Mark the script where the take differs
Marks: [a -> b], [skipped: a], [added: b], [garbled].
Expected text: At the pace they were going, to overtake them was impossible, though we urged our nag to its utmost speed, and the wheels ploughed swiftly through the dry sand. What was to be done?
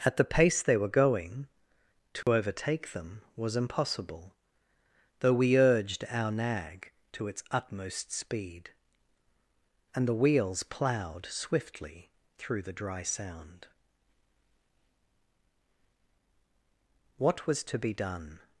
At the pace they were going, to overtake them was impossible, though we urged our nag to its utmost speed, and the wheels ploughed swiftly through the dry [sand. -> sound] What was to be done?